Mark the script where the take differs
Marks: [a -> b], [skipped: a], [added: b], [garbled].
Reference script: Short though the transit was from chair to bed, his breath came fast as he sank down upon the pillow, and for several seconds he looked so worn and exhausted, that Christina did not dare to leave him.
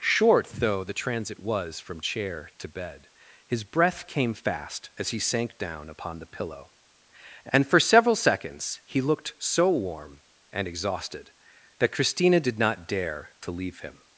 Short though the transit was from chair to bed, his breath came fast as he sank down upon the pillow, and for several seconds he looked so [worn -> warm] and exhausted, that Christina did not dare to leave him.